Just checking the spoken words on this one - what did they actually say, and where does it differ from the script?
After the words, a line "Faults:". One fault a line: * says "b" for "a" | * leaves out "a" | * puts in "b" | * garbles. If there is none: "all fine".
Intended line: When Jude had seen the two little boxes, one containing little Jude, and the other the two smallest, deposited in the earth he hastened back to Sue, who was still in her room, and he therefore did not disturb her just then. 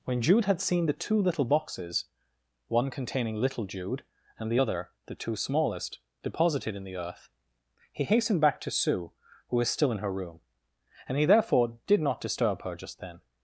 When Jude had seen the two little boxes, one containing little Jude, and the other the two smallest, deposited in the earth he hastened back to Sue, who was still in her room, and he therefore did not disturb her just then.
Faults:
all fine